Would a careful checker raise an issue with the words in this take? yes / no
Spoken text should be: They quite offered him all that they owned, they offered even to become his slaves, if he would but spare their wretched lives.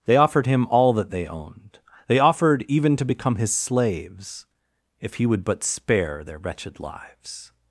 yes